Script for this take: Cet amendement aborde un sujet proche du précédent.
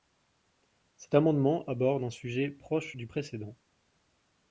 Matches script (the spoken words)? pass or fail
pass